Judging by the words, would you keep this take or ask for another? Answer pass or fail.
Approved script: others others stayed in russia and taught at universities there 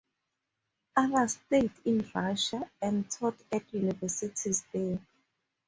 fail